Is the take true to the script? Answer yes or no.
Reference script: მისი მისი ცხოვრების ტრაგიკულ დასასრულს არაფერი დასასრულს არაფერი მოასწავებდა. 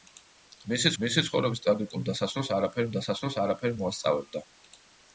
yes